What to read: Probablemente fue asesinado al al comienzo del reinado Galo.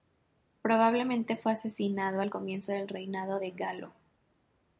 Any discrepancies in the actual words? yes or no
yes